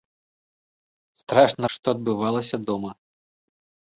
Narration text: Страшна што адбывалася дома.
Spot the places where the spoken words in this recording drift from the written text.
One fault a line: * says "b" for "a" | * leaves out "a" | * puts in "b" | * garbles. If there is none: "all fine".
all fine